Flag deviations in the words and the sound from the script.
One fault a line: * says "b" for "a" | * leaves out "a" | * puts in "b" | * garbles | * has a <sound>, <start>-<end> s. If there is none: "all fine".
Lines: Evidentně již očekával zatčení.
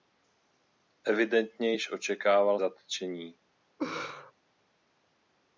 * has a laugh, 3.8-4.3 s